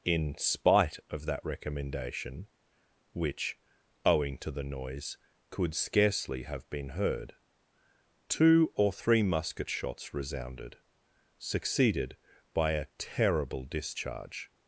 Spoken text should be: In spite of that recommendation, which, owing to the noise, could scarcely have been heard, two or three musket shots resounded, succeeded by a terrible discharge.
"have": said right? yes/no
yes